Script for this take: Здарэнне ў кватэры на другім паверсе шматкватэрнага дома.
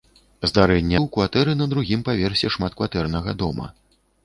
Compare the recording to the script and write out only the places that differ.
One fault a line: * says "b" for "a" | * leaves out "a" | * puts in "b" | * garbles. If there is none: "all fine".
all fine